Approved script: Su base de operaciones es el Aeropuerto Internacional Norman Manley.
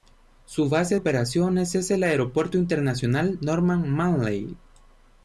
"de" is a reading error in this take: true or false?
true